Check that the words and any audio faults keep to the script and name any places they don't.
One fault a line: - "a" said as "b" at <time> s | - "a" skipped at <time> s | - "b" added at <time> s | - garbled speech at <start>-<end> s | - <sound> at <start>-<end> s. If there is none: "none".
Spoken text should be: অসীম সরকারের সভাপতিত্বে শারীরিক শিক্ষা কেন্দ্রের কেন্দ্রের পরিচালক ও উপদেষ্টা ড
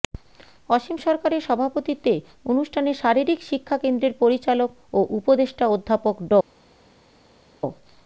- "অনুষ্ঠানে" added at 2.5 s
- "কেন্দ্রের" skipped at 4.1 s
- "অধ্যাপক" added at 5.7 s